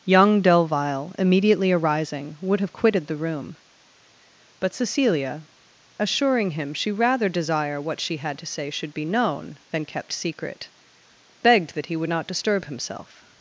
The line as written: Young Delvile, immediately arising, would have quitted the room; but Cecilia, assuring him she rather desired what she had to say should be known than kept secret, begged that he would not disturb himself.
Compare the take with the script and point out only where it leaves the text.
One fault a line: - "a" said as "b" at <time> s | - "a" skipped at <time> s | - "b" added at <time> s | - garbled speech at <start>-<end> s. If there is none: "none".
- "desired" said as "desire" at 7.3 s